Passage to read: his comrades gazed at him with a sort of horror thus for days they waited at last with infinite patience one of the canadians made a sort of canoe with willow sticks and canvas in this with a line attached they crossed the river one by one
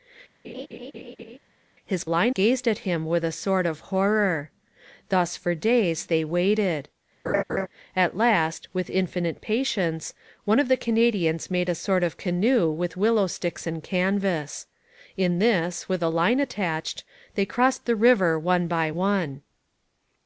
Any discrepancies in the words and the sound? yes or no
yes